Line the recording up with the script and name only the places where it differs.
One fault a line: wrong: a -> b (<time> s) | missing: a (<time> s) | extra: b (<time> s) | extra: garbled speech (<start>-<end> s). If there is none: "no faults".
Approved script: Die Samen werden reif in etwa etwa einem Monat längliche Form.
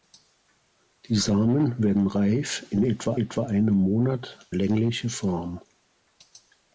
no faults